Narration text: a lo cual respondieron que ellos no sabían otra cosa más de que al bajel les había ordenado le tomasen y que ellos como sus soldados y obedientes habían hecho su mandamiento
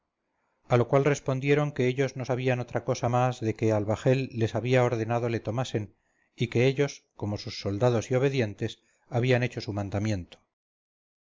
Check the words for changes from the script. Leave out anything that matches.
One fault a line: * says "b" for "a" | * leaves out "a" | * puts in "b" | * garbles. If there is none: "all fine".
all fine